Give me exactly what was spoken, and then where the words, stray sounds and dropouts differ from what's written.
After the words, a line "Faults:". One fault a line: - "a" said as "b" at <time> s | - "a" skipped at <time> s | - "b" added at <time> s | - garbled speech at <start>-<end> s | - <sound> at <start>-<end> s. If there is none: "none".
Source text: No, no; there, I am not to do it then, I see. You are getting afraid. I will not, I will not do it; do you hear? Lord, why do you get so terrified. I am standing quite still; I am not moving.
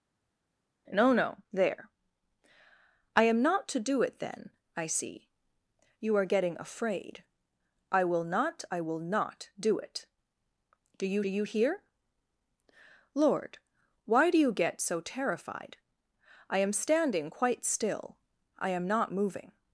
No, no; there, I am not to do it then, I see. You are getting afraid. I will not, I will not do it; do you you hear? Lord, why do you get so terrified. I am standing quite still; I am not moving.
Faults:
- "you" added at 11.3 s